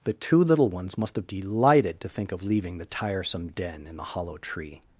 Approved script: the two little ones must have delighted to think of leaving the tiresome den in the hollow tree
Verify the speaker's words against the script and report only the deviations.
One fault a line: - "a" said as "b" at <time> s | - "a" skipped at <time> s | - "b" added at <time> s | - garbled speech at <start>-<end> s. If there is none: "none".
none